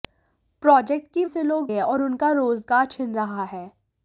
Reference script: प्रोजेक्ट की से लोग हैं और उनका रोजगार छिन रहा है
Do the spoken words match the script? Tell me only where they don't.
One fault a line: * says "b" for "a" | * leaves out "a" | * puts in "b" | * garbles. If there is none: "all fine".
all fine